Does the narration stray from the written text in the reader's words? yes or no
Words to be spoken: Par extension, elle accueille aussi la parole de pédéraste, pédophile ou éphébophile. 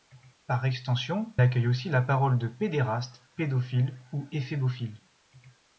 yes